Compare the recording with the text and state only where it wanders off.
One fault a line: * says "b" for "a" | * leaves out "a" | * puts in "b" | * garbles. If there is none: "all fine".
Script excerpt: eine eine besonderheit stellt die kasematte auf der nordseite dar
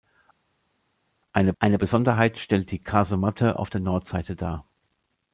all fine